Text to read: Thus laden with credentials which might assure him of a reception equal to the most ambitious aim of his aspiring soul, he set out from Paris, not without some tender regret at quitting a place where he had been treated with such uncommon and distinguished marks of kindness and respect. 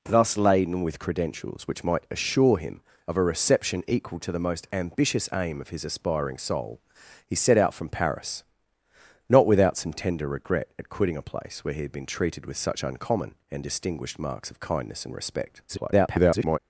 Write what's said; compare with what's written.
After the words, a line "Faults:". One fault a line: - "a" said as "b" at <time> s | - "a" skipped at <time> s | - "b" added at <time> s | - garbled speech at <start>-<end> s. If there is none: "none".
Thus laden with credentials which might assure him of a reception equal to the most ambitious aim of his aspiring soul, he set out from Paris, not without some tender regret at quitting a place where he had been treated with such uncommon and distinguished marks of kindness and respect. [garbled]
Faults:
- garbled speech at 15.7-16.6 s